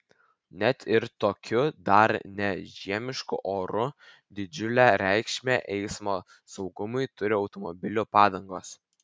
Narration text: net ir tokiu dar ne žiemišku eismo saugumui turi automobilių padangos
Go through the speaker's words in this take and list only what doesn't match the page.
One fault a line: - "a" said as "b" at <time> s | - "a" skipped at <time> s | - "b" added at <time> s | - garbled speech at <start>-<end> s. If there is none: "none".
- "oru didžiulę reikšmę" added at 3.5 s